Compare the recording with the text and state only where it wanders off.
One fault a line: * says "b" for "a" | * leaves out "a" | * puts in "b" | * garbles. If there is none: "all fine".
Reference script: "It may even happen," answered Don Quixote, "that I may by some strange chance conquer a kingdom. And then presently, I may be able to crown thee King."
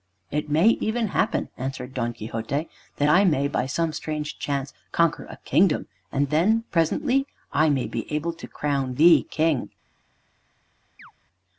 all fine